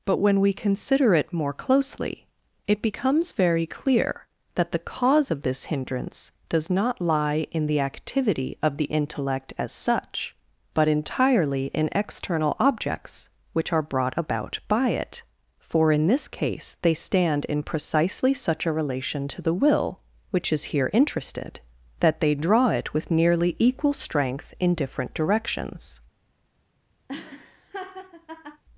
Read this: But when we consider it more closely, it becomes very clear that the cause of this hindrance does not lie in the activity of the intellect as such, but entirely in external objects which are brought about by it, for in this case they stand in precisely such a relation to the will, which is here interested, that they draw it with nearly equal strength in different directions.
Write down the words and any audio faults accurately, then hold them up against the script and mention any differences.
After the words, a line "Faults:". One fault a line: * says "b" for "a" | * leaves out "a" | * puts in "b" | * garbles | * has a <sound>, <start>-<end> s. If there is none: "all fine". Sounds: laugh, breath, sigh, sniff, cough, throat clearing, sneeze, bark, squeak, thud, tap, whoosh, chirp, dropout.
But when we consider it more closely, it becomes very clear that the cause of this hindrance does not lie in the activity of the intellect as such, but entirely in external objects which are brought about by it, for in this case they stand in precisely such a relation to the will, which is here interested, that they draw it with nearly equal strength in different directions.
Faults:
* has a laugh, 27.1-28.6 s